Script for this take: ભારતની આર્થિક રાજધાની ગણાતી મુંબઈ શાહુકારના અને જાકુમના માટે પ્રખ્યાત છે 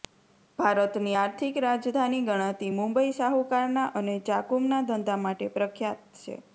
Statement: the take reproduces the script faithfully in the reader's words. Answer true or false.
false